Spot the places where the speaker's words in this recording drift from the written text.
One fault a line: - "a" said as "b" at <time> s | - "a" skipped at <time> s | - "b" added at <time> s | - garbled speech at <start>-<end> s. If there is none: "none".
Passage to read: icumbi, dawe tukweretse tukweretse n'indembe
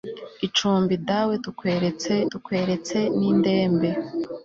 none